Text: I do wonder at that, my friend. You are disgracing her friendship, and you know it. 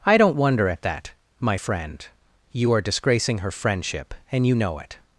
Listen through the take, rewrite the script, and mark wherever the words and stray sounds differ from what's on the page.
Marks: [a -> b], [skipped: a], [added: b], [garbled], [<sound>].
I [do -> don't] wonder at that, my friend. You are disgracing her friendship, and you know it.